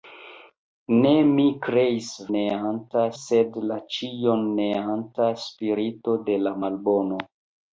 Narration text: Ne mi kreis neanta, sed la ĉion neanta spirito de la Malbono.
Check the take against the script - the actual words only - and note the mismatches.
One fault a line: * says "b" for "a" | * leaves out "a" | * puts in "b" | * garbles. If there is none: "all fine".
all fine